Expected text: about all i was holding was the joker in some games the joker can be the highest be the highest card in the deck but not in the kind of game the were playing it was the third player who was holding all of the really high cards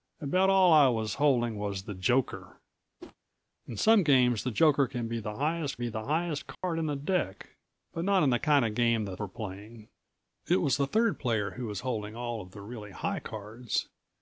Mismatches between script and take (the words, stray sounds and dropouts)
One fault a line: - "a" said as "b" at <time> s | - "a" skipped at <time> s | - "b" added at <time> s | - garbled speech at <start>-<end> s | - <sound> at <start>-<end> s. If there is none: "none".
- whoosh at 3.0-3.2 s
- dropout at 6.5-6.6 s